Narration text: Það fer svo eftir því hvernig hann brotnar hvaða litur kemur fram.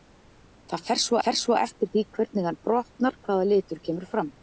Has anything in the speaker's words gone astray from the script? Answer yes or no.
yes